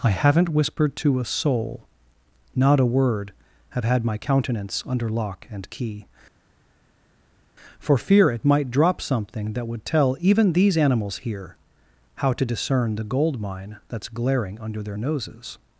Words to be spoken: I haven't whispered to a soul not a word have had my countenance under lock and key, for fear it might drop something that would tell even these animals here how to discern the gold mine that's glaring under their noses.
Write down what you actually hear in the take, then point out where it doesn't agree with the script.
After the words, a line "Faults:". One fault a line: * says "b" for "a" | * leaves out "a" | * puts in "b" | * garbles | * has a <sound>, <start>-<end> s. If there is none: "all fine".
I haven't whispered to a soul not a word have had my countenance under lock and key, for fear it might drop something that would tell even these animals here how to discern the gold mine that's glaring under their noses.
Faults:
all fine